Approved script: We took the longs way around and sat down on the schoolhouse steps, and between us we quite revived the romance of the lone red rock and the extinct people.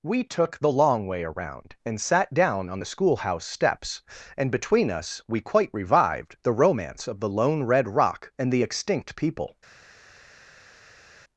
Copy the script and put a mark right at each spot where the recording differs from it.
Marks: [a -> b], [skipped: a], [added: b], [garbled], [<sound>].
We took the [longs -> long] way around and sat down on the schoolhouse steps, and between us we quite revived the romance of the lone red rock and the extinct people.